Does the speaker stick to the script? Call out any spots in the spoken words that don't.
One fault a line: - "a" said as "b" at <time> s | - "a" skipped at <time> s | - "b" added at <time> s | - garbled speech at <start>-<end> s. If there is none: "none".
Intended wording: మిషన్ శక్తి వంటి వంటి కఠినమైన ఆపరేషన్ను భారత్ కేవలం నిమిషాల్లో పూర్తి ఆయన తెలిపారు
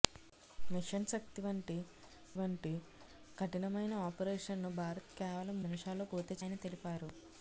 none